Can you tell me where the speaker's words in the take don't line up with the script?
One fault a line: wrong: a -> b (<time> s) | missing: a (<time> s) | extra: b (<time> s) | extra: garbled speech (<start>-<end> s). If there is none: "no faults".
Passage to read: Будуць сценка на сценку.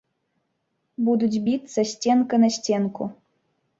extra: біцца (1.5 s)